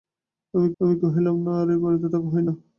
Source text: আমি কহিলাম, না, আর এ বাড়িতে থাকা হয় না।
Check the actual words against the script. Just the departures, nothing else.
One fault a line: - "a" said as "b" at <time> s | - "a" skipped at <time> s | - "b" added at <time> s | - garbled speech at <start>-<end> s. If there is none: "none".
- "আমি" added at 0.8 s